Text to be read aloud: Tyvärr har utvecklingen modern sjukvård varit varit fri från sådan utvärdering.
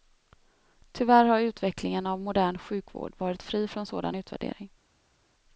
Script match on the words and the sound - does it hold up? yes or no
no